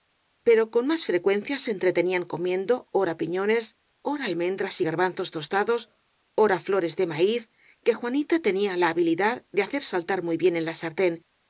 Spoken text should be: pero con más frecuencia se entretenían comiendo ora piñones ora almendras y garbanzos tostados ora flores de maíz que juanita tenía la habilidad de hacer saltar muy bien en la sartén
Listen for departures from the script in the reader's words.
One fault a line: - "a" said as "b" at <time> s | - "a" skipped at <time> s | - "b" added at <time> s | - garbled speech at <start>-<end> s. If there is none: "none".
none